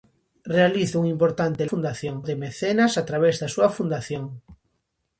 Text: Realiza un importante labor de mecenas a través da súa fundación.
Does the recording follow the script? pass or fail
fail